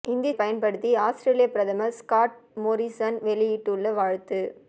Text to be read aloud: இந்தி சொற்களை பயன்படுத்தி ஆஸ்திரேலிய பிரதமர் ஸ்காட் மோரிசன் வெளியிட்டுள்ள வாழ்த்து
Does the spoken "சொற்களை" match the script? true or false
false